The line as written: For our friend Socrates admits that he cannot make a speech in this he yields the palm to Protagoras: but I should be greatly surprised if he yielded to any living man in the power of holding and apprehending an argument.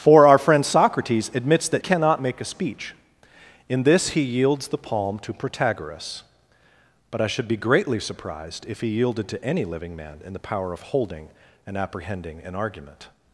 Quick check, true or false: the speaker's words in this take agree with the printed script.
false